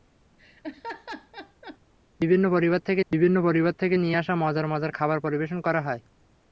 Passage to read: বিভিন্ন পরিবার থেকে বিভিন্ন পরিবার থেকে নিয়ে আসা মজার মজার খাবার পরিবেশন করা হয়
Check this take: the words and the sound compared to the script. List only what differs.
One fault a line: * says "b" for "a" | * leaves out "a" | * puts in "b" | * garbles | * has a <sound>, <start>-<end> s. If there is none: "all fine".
* has a laugh, 0.4-1.8 s